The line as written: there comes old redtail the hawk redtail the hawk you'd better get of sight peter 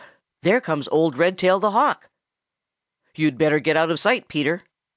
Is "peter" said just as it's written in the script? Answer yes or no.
yes